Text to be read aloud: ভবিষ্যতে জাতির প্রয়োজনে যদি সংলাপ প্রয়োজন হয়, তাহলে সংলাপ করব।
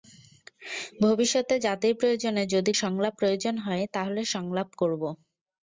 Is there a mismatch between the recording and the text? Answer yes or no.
no